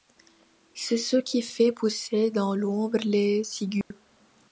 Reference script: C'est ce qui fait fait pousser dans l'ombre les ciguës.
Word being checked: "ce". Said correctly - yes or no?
yes